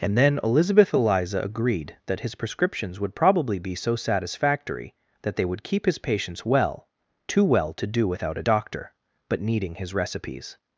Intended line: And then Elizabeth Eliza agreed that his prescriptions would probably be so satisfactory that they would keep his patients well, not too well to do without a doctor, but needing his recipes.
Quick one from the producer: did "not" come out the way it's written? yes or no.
no